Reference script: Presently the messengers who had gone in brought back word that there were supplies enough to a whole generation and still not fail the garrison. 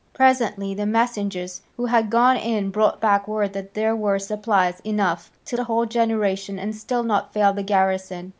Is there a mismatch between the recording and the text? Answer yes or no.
no